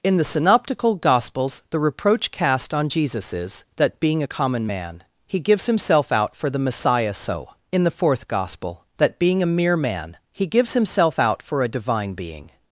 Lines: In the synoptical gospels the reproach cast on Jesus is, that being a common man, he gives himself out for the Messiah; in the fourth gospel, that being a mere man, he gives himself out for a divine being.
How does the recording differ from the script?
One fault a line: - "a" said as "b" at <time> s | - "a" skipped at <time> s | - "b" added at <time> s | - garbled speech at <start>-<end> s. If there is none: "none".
- "so" added at 7.1 s